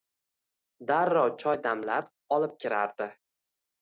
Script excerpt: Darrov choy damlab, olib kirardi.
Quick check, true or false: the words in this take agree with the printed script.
true